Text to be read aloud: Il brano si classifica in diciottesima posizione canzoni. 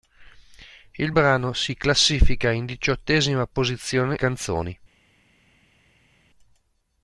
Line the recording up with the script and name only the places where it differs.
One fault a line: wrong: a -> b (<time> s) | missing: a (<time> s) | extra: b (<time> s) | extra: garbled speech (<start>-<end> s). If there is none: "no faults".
no faults